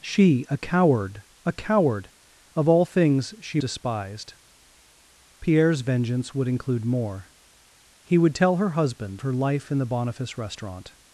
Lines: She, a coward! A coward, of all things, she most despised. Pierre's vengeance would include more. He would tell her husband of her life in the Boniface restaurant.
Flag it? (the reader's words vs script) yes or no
yes